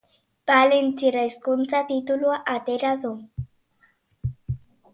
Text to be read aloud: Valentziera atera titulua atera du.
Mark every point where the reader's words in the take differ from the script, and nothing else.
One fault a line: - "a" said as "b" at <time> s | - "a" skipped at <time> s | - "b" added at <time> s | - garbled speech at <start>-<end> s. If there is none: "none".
- "atera" said as "hizkuntza" at 1.3 s